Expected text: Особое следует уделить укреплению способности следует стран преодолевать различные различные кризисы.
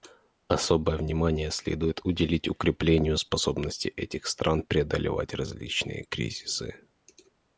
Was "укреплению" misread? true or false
false